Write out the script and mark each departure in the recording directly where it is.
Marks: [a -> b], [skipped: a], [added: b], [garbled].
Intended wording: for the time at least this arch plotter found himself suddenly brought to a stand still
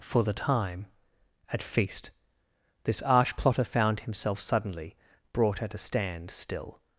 for the time at [least -> feast] this arch plotter found himself suddenly brought [to -> at] a stand still